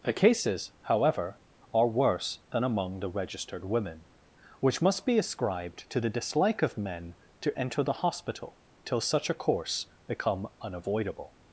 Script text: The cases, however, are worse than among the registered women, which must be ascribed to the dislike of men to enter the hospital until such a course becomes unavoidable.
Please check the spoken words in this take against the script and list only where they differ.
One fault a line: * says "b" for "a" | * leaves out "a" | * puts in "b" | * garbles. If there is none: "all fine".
* says "till" for "until"
* says "become" for "becomes"